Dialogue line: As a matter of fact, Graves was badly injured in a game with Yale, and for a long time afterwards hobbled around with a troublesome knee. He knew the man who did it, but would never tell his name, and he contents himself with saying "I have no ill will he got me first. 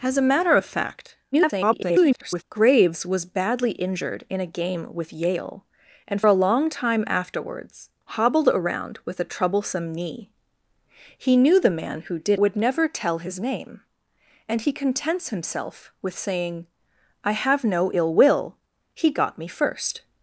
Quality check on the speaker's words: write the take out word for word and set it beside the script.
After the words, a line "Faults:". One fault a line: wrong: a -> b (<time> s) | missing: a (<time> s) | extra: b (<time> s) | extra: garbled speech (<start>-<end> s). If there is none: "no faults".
As a matter of fact, [garbled] Graves was badly injured in a game with Yale, and a long time afterwards hobbled around with a troublesome knee. He knew the man who did would never tell his name, and he contents himself with saying "I have no ill will he got me first.
Faults:
extra: garbled speech (1.3-2.4 s)
missing: for (6.2 s)
missing: it but (12.4 s)